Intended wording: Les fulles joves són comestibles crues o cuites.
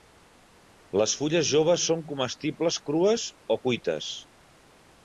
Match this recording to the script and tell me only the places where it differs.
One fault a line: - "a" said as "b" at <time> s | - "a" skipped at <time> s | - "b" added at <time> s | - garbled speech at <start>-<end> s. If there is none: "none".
none